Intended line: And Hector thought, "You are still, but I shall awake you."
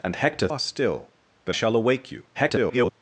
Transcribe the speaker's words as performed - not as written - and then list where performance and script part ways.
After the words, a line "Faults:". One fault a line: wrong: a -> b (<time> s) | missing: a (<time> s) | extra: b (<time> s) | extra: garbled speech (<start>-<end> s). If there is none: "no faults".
And Hector are still, but shall awake you." [garbled]
Faults:
missing: thought You (0.5 s)
missing: I (1.5 s)
extra: garbled speech (2.3-2.9 s)